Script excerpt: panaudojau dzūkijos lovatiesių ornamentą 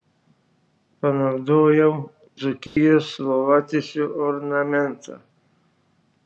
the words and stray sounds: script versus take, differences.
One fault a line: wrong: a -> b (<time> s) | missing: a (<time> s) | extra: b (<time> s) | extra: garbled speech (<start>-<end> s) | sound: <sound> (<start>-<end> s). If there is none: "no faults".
sound: dropout (2.7-2.8 s)